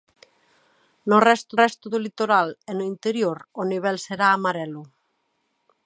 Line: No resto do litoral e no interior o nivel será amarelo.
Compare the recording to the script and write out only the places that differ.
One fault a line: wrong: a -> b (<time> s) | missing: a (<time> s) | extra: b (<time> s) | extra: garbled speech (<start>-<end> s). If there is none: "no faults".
extra: resto (1.6 s)